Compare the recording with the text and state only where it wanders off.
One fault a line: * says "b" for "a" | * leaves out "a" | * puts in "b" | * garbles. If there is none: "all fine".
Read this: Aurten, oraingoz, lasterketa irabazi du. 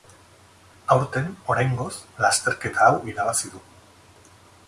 * puts in "hau"